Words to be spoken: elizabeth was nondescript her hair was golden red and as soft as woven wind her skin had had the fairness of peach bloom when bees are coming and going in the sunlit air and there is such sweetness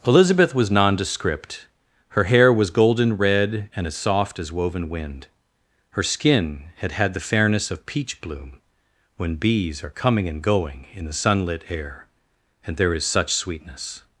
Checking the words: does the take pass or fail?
pass